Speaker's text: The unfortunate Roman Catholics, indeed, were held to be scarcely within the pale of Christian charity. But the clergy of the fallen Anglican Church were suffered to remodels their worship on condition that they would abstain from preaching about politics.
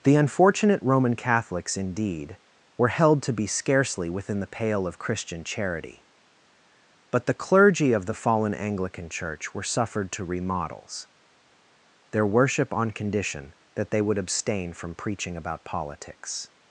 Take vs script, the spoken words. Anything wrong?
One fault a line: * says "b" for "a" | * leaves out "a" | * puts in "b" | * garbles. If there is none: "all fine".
all fine